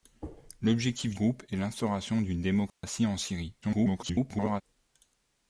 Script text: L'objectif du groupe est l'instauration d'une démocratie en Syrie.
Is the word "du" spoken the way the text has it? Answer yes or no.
no